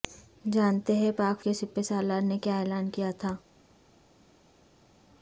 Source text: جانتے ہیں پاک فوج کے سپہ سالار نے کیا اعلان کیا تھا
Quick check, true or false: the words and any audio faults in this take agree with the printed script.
false